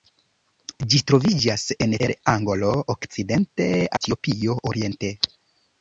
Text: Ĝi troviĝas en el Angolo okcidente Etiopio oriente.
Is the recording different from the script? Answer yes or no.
no